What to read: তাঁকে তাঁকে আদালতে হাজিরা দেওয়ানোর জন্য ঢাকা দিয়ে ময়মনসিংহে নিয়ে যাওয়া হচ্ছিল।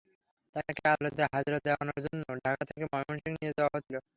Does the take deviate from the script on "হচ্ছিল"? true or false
false